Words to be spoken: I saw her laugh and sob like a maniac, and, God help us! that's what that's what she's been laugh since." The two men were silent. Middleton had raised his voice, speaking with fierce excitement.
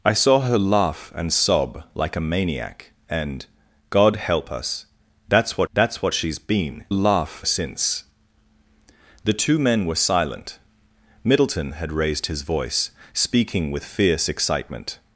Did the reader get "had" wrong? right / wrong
right